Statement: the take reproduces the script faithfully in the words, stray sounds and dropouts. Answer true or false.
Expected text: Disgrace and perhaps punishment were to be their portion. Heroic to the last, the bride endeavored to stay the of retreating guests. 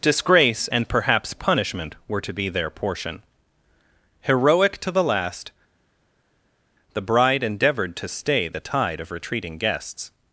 false